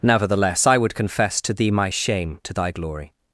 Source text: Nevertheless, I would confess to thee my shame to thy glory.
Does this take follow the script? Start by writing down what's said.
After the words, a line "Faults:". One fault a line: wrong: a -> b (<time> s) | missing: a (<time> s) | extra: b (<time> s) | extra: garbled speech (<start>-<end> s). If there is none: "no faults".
Nevertheless, I would confess to thee my shame to thy glory.
Faults:
no faults